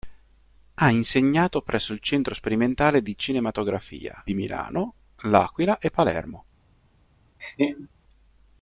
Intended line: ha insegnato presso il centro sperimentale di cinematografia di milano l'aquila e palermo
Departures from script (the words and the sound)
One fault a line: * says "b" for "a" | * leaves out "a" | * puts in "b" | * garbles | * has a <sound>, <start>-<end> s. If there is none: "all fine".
* has a laugh, 7.4-7.9 s